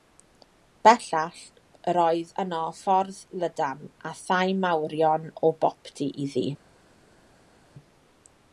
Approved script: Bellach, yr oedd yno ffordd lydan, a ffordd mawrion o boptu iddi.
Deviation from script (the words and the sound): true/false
true